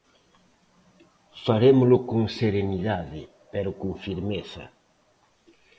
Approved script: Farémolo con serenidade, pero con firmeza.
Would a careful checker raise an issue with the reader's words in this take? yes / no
no